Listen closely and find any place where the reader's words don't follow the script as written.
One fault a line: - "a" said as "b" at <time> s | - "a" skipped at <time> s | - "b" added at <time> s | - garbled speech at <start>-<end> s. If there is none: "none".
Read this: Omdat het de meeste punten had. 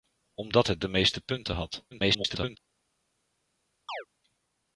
- garbled speech at 1.9-2.6 s